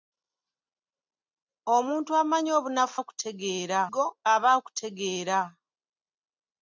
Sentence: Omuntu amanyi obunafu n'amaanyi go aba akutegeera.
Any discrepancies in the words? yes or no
yes